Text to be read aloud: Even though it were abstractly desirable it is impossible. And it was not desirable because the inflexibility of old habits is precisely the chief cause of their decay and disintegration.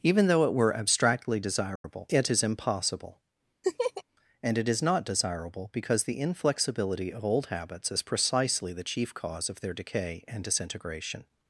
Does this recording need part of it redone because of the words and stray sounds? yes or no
yes